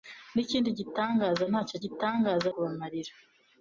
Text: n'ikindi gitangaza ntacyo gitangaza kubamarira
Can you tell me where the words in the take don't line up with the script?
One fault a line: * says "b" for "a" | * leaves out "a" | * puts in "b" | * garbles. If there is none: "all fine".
all fine